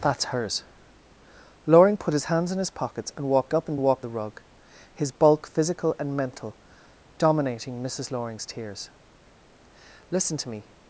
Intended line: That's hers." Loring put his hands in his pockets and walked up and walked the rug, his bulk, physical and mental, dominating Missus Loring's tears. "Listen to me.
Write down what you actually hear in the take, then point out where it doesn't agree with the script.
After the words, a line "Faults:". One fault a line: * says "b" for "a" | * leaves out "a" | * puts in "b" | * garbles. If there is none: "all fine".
That's hers." Loring put his hands in his pockets and walked up and walked the rug, his bulk, physical and mental, dominating Missus Loring's tears. "Listen to me.
Faults:
all fine